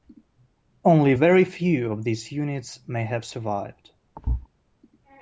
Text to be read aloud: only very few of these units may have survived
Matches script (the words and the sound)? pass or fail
fail